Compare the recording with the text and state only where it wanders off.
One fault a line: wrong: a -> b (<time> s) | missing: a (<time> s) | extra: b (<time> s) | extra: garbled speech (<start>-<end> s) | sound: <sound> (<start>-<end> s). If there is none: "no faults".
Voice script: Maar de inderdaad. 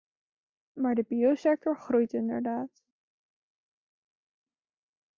extra: biosector groeit (1.0 s)